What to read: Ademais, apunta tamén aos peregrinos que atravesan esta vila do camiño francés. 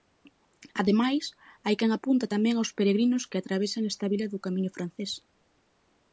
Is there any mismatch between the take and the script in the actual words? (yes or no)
yes